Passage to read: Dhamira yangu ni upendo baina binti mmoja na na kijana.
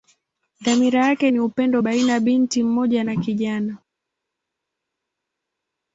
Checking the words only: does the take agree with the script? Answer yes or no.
no